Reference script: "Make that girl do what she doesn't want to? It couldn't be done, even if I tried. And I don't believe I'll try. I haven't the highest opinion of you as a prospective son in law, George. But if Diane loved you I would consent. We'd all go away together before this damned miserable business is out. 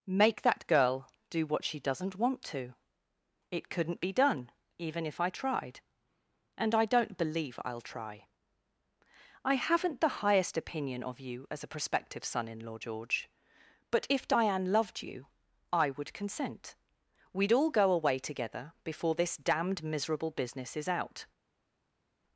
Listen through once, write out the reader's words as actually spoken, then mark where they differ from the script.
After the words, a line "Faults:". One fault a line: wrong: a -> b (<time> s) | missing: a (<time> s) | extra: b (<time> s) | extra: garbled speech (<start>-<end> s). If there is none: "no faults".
"Make that girl do what she doesn't want to? It couldn't be done, even if I tried. And I don't believe I'll try. I haven't the highest opinion of you as a prospective son in law, George. But if Diane loved you I would consent. We'd all go away together before this damned miserable business is out.
Faults:
no faults